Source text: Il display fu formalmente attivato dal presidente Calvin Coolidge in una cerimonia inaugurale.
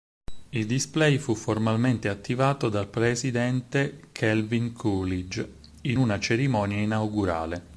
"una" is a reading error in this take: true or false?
false